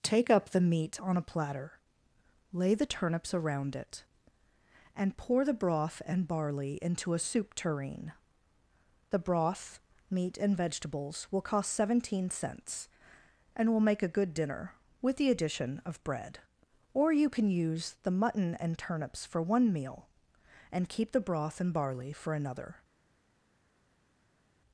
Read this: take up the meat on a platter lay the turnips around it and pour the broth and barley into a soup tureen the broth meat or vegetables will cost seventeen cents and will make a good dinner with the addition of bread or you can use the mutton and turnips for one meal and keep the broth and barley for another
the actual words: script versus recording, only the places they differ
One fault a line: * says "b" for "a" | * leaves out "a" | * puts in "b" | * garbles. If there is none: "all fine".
* says "and" for "or"